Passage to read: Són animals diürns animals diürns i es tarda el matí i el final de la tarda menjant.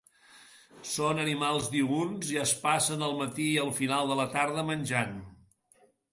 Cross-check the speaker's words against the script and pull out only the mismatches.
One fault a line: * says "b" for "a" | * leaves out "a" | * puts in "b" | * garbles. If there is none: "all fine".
* leaves out "animals diürns"
* says "passen" for "tarda"